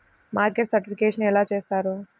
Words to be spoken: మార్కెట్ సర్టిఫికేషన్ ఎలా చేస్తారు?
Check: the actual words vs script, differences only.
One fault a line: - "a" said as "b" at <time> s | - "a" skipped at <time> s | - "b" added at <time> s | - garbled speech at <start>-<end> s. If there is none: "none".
none